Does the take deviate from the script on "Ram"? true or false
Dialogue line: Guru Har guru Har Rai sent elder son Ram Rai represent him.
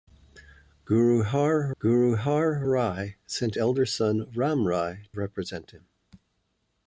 false